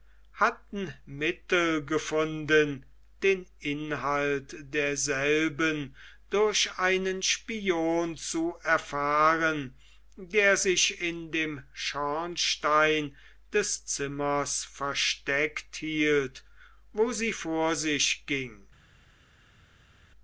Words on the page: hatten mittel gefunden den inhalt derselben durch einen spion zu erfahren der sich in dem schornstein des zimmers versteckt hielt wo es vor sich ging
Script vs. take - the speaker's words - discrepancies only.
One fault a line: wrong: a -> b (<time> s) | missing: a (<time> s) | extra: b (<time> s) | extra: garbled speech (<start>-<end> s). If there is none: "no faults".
wrong: es -> sie (17.1 s)